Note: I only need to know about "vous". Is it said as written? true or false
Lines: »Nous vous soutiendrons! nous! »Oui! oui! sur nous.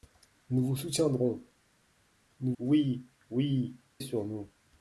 true